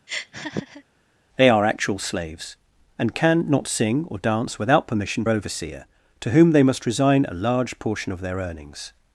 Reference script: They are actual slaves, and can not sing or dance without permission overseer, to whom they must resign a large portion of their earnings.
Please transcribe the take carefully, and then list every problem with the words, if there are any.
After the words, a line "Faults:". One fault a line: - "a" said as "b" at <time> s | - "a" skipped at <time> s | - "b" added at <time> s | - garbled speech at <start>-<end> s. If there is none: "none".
They are actual slaves, and can not sing or dance without permission overseer, to whom they must resign a large portion of their earnings.
Faults:
none